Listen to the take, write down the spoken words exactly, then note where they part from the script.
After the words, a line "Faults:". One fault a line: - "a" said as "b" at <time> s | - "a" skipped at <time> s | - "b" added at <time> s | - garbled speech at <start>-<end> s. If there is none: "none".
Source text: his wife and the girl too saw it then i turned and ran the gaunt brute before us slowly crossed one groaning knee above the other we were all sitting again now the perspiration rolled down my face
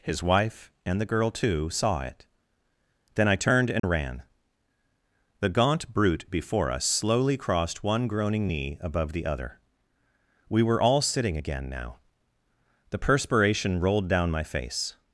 his wife and the girl too saw it then i turned and ran the gaunt brute before us slowly crossed one groaning knee above the other we were all sitting again now the perspiration rolled down my face
Faults:
none